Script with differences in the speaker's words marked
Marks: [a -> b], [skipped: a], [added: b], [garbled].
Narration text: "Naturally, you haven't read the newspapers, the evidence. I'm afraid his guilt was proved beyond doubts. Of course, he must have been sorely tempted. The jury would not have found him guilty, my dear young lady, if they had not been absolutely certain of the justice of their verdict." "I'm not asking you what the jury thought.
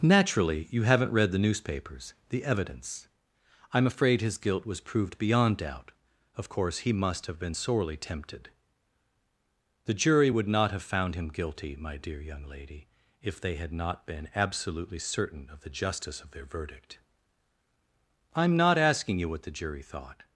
"Naturally, you haven't read the newspapers, the evidence. I'm afraid his guilt was proved beyond [doubts. -> doubt] Of course, he must have been sorely tempted. The jury would not have found him guilty, my dear young lady, if they had not been absolutely certain of the justice of their verdict." "I'm not asking you what the jury thought.